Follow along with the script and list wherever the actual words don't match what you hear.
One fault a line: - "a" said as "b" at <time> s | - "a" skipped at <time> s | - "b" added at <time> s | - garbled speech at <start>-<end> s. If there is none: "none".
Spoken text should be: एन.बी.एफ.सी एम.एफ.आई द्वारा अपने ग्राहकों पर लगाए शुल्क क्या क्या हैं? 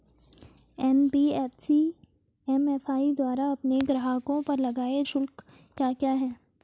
none